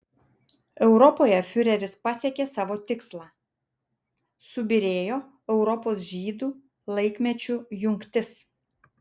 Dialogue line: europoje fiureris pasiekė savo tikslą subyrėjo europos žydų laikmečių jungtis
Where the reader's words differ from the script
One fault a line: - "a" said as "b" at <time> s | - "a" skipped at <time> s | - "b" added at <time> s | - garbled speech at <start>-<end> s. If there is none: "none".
none